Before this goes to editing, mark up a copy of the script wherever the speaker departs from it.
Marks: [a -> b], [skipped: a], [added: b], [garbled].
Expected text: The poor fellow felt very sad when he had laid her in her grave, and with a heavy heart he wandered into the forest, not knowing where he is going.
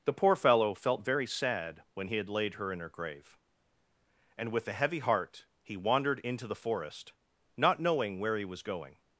The poor fellow felt very sad when he had laid her in her grave, and with a heavy heart he wandered into the forest, not knowing where he [is -> was] going.